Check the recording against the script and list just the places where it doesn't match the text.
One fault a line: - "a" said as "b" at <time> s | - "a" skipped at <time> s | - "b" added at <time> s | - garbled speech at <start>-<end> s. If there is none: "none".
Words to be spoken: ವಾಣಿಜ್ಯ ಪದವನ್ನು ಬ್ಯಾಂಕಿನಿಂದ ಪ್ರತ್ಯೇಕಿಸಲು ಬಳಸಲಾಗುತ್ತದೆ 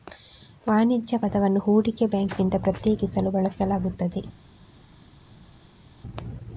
- "ಹೂಡಿಕೆ" added at 1.6 s